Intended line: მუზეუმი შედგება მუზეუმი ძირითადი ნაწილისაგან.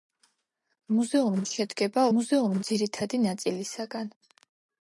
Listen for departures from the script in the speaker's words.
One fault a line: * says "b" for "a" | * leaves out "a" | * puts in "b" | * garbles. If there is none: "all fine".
all fine